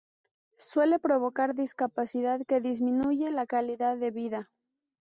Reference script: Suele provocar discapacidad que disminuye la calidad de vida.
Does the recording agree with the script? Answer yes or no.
yes